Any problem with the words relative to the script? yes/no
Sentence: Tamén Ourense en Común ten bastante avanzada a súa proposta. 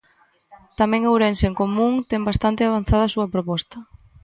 no